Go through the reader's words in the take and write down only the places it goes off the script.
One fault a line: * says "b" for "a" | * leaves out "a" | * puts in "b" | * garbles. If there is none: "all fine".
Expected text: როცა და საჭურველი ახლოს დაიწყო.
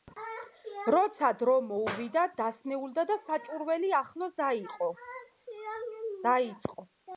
* puts in "დრო მოუვიდა დასნეულდა"